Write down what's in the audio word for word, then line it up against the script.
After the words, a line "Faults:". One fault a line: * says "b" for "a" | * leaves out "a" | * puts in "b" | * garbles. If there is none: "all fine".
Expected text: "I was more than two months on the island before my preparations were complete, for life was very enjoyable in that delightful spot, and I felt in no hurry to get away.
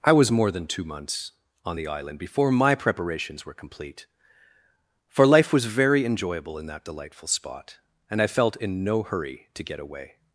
"I was more than two months on the island before my preparations were complete, for life was very enjoyable in that delightful spot, and I felt in no hurry to get away.
Faults:
all fine